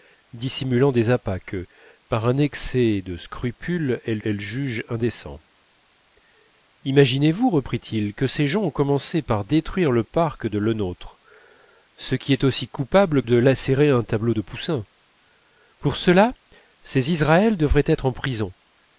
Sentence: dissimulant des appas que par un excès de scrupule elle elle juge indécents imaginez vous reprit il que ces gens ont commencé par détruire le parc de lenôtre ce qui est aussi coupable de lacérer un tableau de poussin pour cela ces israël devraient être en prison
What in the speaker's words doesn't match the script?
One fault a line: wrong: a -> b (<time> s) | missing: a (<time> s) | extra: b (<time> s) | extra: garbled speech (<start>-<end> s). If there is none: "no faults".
no faults